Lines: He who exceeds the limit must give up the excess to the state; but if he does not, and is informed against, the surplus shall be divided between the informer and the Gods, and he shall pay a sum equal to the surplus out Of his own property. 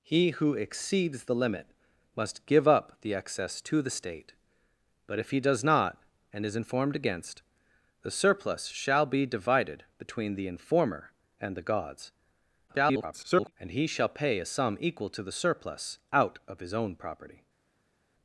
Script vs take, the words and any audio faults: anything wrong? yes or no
yes